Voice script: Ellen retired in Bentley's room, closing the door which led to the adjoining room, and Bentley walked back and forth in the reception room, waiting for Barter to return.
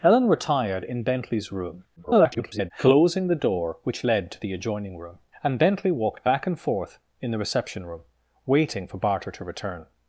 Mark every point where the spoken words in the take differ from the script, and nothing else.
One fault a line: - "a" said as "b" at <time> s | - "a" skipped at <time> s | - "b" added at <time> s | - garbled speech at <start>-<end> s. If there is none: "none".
- garbled speech at 2.0-2.7 s